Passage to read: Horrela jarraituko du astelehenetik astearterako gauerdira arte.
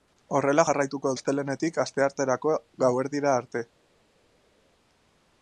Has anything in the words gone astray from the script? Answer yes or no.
yes